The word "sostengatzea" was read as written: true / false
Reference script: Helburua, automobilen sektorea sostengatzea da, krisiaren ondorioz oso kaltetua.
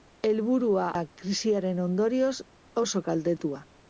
false